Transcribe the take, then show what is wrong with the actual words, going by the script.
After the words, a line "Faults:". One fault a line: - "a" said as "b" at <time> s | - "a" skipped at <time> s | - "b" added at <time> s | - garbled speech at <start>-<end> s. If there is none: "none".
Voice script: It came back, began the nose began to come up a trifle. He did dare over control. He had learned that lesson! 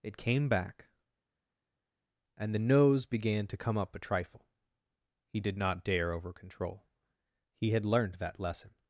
It came back, and the nose began to come up a trifle. He did not dare over control. He had learned that lesson!
Faults:
- "began" said as "and" at 2.4 s
- "not" added at 5.6 s